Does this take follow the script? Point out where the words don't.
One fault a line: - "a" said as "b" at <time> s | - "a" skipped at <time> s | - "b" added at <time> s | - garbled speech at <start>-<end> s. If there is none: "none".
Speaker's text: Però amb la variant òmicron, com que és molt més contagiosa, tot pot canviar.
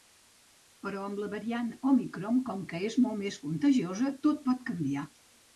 none